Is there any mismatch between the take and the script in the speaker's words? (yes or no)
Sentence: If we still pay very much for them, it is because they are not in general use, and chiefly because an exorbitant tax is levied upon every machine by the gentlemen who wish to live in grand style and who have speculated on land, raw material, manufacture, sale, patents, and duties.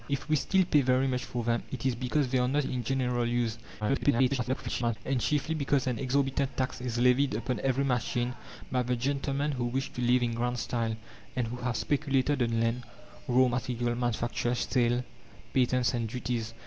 yes